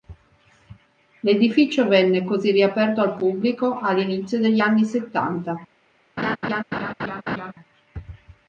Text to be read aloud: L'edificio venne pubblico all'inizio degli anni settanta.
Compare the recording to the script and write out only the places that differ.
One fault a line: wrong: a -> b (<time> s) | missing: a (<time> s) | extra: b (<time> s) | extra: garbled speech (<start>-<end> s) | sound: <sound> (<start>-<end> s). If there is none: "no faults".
extra: così riaperto al (2.2 s)
sound: laugh (6.2-7.5 s)